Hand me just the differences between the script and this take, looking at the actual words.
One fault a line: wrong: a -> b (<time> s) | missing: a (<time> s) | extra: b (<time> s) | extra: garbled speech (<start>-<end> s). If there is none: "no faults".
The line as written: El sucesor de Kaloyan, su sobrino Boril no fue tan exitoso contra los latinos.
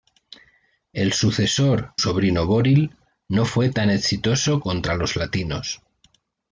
missing: de Kaloyan su (1.9 s)